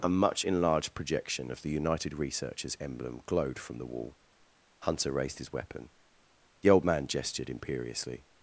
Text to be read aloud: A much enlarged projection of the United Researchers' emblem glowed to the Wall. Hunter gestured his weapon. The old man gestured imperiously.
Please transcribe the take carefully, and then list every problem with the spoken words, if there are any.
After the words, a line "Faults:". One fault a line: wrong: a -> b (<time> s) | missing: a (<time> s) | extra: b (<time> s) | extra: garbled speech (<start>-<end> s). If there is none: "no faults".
A much enlarged projection of the United Researchers' emblem glowed from the Wall. Hunter raised his weapon. The old man gestured imperiously.
Faults:
wrong: to -> from (3.6 s)
wrong: gestured -> raised (5.1 s)